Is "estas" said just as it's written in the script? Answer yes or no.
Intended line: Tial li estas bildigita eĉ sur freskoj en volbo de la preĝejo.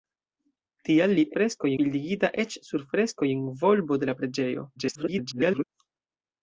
no